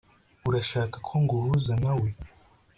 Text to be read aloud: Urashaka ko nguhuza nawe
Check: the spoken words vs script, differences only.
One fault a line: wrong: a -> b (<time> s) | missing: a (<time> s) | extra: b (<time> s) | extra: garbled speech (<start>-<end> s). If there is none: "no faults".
no faults